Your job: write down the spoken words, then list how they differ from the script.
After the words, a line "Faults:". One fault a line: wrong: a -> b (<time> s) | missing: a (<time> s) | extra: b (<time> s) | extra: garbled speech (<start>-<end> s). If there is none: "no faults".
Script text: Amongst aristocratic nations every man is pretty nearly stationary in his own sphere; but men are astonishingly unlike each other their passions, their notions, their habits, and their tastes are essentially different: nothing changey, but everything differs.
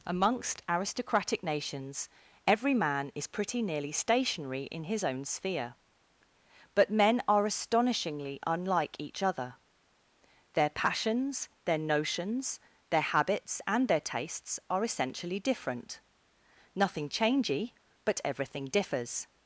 Amongst aristocratic nations every man is pretty nearly stationary in his own sphere; but men are astonishingly unlike each other their passions, their notions, their habits, and their tastes are essentially different: nothing changey, but everything differs.
Faults:
no faults